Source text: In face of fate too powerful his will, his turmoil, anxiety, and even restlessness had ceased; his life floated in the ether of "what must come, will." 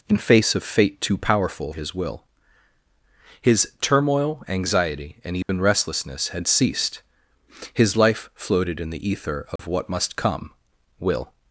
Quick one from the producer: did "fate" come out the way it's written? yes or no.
yes